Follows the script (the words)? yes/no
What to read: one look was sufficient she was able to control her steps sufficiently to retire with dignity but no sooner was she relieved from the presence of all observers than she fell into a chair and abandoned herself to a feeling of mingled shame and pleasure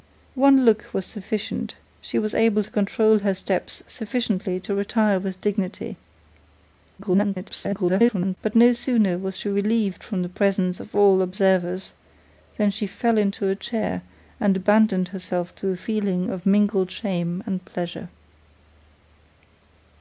no